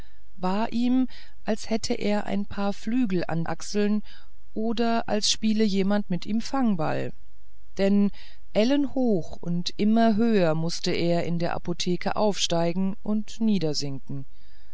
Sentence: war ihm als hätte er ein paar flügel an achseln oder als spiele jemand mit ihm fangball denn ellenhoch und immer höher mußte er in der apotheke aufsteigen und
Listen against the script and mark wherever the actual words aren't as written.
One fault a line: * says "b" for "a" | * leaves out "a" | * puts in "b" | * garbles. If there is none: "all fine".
all fine